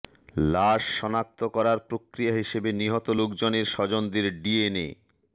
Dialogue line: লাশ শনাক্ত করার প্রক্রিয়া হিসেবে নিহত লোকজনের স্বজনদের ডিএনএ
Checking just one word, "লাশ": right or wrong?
right